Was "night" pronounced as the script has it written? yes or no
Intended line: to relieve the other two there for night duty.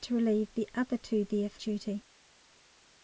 no